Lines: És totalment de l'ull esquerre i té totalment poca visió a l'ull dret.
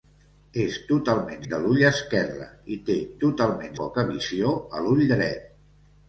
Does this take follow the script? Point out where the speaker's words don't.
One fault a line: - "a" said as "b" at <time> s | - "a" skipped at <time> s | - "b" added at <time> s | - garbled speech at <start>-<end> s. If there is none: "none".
none